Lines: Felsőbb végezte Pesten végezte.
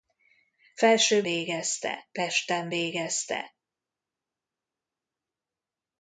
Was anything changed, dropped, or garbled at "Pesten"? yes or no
no